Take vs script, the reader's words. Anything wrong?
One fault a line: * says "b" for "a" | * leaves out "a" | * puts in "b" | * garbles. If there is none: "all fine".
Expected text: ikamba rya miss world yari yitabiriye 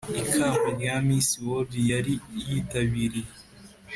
all fine